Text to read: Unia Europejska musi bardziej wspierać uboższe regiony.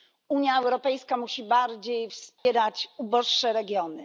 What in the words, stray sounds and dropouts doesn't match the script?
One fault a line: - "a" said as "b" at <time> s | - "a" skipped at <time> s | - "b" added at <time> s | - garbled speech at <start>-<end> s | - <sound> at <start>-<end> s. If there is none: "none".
- dropout at 2.4-2.5 s